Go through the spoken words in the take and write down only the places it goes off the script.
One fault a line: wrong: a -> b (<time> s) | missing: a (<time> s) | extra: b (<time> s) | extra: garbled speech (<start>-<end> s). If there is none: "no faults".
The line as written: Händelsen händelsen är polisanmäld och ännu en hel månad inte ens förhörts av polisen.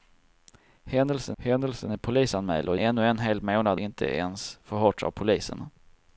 no faults